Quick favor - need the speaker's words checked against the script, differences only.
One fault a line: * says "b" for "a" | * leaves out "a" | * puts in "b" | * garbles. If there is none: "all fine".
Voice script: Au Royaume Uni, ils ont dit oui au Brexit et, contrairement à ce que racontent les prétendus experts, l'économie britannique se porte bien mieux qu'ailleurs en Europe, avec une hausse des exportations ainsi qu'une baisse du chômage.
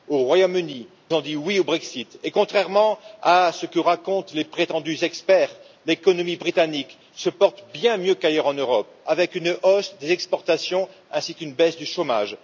* leaves out "ils"